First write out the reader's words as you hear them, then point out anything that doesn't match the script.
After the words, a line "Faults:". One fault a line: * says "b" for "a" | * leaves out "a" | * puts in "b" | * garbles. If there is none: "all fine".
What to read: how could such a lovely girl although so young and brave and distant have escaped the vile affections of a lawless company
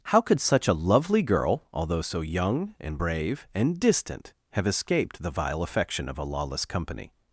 how could such a lovely girl although so young and brave and distant have escaped the vile affection of a lawless company
Faults:
* says "affection" for "affections"